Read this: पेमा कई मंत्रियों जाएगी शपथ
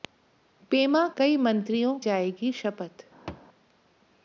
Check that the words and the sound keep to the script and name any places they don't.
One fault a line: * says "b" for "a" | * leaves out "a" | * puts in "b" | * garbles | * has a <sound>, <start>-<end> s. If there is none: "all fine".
* has a thud, 3.3-3.5 s